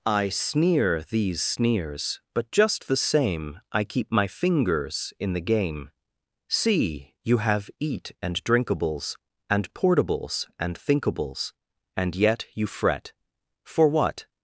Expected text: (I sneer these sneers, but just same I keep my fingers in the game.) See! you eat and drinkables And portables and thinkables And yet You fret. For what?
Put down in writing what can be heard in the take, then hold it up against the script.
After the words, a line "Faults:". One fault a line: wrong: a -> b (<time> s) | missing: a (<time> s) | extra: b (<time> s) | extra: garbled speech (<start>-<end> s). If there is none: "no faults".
(I sneer these sneers, but just the same I keep my fingers in the game.) See! you have eat and drinkables And portables and thinkables And yet You fret. For what?
Faults:
extra: the (2.9 s)
extra: have (7.4 s)